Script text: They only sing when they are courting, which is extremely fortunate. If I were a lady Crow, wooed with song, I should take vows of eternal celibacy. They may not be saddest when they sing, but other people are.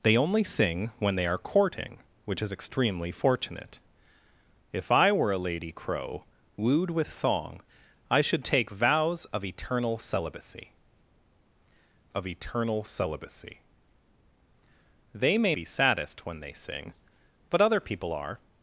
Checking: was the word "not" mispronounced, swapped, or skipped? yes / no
yes